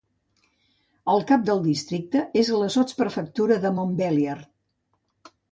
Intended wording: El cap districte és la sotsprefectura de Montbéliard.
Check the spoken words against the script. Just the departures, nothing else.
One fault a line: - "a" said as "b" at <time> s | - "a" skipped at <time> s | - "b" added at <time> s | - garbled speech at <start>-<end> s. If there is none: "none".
- "del" added at 1.5 s